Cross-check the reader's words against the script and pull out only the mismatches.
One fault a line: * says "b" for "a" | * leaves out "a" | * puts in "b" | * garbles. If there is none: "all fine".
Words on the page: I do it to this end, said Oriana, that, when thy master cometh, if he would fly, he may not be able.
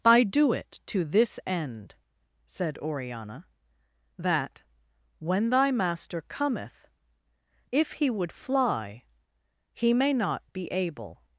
all fine